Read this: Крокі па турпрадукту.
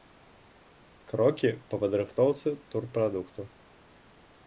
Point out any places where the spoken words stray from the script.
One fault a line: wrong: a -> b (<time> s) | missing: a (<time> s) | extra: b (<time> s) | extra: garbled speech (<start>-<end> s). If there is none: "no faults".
extra: падрыхтоўцы (1.8 s)